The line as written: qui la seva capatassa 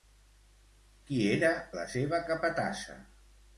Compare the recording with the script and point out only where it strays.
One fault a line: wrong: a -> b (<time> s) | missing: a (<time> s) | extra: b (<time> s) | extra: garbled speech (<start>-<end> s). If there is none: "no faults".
extra: era (1.4 s)